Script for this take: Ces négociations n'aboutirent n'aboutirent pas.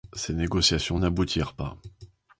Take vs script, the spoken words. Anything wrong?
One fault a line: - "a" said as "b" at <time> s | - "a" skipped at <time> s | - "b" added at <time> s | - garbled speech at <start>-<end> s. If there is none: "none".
- "n'aboutirent" skipped at 1.6 s